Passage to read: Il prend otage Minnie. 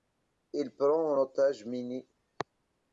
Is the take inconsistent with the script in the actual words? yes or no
no